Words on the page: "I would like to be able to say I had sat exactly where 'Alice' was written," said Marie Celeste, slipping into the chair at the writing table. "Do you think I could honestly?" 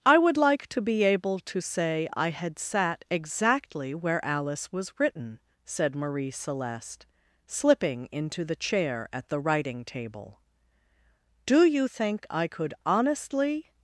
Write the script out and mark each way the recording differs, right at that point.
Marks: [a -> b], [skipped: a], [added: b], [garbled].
"I would like to be able to say I had sat exactly where 'Alice' was written," said Marie Celeste, slipping into the chair at the writing table. "Do you think I could honestly?"